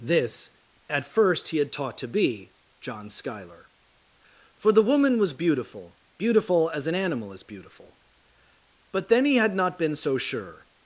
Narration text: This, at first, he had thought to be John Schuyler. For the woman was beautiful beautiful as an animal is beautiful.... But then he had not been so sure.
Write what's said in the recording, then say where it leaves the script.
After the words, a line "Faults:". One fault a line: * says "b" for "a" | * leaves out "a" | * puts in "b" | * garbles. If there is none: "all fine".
This, at first, he had taught to be John Schuyler. For the woman was beautiful beautiful as an animal is beautiful.... But then he had not been so sure.
Faults:
* says "taught" for "thought"